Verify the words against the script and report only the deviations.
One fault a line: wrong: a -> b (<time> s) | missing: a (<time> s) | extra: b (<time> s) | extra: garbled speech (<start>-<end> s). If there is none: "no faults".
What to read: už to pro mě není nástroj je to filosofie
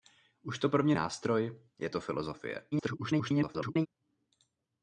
missing: není (0.9 s)
extra: garbled speech (2.7-3.9 s)